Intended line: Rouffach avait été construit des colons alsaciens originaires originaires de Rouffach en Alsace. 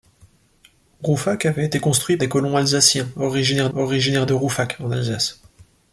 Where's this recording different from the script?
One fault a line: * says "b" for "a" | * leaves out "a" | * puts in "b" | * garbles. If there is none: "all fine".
all fine